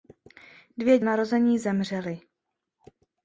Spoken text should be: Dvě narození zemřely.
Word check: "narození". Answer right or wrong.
right